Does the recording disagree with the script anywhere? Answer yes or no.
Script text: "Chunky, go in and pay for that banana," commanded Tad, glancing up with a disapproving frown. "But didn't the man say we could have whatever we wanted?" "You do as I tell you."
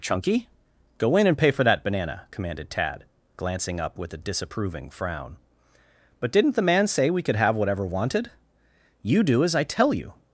yes